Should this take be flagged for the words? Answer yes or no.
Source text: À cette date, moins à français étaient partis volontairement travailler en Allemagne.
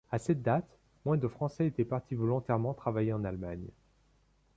yes